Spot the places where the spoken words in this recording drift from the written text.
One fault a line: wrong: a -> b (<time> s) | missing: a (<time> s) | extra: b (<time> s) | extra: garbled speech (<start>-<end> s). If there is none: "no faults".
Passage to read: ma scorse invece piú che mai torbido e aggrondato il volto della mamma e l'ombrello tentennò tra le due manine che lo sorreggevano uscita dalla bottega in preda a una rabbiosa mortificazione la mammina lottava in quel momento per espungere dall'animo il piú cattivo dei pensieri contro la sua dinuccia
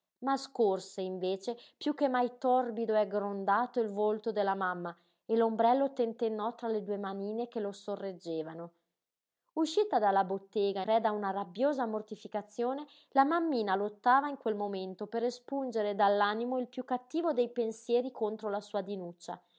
missing: in (10.8 s)